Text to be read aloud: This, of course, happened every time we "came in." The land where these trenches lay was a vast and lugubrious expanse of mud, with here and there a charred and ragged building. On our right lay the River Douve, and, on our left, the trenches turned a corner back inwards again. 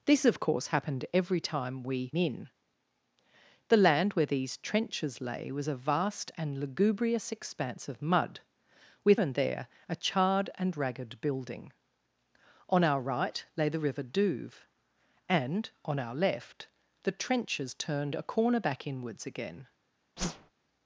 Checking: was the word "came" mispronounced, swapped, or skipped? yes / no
yes